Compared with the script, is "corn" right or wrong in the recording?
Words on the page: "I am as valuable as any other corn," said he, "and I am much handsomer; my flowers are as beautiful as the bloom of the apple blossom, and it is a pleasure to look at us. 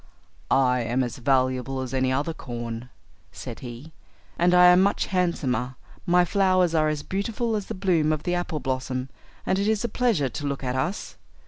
right